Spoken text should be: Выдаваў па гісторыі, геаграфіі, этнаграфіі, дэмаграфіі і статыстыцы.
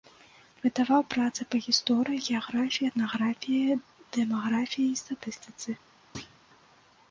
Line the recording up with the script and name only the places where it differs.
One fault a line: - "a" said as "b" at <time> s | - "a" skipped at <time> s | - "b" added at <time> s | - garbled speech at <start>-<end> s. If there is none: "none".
- "працы" added at 1.1 s